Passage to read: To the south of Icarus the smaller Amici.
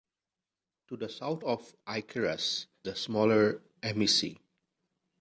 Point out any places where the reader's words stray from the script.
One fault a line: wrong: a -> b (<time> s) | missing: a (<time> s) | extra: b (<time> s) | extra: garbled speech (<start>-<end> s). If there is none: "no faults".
no faults